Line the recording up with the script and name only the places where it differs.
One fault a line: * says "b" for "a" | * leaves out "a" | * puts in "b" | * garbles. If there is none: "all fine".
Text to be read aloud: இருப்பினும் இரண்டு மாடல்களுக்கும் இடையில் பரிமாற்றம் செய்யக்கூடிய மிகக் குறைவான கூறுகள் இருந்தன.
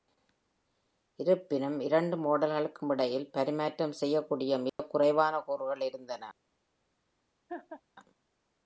all fine